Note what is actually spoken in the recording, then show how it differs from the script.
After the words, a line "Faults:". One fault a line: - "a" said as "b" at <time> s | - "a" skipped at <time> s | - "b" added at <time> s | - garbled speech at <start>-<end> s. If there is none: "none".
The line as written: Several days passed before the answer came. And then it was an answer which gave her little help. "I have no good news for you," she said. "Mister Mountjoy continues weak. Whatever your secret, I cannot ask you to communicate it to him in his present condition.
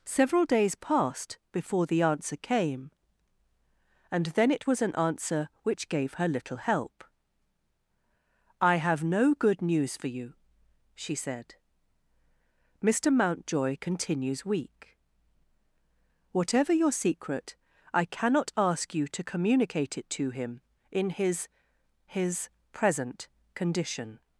Several days passed before the answer came. And then it was an answer which gave her little help. "I have no good news for you," she said. "Mister Mountjoy continues weak. Whatever your secret, I cannot ask you to communicate it to him in his his present condition.
Faults:
- "his" added at 22.1 s